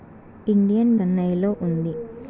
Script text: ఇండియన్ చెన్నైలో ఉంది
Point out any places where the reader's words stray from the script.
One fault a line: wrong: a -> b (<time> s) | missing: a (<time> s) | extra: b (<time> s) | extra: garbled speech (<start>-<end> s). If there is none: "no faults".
no faults